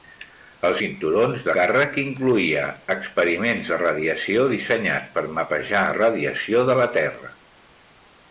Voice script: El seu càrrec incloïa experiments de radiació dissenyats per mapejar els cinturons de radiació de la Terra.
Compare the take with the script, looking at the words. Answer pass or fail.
fail